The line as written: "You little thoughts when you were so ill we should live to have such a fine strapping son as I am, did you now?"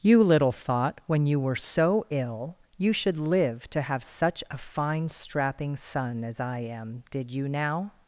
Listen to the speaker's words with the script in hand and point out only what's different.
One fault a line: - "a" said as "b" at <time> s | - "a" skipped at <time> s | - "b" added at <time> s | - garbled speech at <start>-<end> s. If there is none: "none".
- "thoughts" said as "thought" at 0.5 s
- "we" said as "you" at 2.8 s